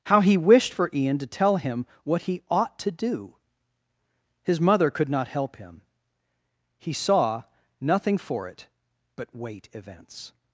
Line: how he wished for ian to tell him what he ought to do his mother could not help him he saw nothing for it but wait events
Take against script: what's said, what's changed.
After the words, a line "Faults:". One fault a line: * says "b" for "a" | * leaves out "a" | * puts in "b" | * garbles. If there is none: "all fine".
how he wished for ian to tell him what he ought to do his mother could not help him he saw nothing for it but wait events
Faults:
all fine